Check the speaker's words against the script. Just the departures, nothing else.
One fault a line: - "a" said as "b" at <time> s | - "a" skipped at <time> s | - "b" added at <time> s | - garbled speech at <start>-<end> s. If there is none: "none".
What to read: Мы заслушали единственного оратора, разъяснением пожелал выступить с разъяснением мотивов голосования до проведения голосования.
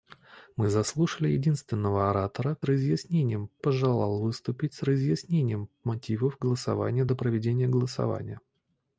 none